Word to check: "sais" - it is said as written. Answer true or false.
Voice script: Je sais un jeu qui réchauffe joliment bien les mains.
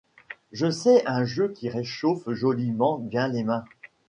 true